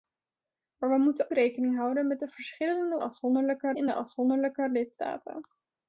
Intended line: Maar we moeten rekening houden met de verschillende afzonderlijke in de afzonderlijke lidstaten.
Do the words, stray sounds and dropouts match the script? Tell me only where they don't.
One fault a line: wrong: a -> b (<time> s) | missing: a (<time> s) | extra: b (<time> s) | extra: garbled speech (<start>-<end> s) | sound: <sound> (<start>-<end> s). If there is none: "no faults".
no faults